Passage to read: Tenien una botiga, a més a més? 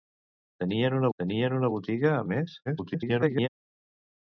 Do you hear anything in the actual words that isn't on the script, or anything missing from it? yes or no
yes